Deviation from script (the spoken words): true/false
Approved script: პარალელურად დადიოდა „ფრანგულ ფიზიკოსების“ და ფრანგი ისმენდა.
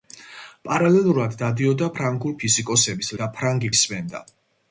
false